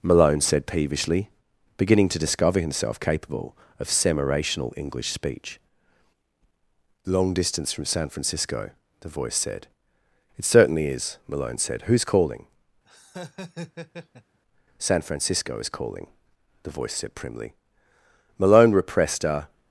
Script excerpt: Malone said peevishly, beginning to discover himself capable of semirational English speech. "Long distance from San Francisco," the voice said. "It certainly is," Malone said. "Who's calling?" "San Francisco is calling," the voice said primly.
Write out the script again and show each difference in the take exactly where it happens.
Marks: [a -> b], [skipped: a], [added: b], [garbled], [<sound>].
Malone said peevishly, beginning to discover himself capable of semirational English speech. "Long distance from San Francisco," the voice said. "It certainly is," Malone said. "Who's calling?" [laugh] "San Francisco is calling," the voice said primly. [added: Malone repressed a]